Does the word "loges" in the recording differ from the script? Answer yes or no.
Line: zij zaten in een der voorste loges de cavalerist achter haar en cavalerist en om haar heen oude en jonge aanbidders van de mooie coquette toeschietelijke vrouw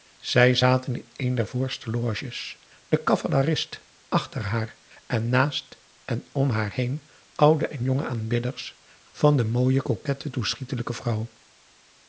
no